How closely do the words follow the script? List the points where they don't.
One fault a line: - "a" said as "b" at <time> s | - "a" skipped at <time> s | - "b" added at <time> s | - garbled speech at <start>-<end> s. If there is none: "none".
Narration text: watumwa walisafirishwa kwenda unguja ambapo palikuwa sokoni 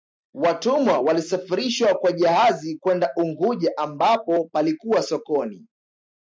- "kwa jahazi" added at 1.9 s